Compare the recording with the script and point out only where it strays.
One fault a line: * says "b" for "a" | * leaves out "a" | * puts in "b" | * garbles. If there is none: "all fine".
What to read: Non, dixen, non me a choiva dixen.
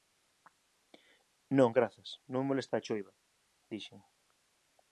* says "grazas" for "dixen"
* puts in "molesta"